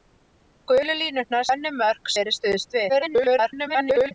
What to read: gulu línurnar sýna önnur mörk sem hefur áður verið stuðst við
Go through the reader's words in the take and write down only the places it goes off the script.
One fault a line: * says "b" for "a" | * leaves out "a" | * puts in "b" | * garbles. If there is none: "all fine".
* leaves out "sýna"
* leaves out "sem hefur áður"
* garbles